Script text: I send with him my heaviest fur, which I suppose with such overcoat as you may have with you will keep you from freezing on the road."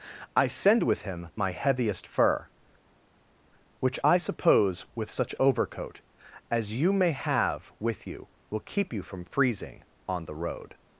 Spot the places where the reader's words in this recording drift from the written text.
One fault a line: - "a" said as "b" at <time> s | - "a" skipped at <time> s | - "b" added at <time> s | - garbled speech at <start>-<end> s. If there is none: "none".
none